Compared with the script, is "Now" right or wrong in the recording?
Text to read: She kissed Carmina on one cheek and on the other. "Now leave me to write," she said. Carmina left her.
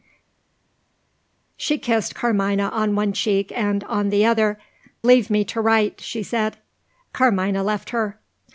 wrong